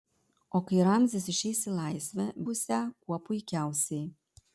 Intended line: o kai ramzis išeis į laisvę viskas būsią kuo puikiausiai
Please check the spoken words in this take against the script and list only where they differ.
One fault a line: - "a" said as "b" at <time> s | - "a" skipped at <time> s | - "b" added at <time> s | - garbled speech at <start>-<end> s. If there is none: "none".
- "viskas" skipped at 2.3 s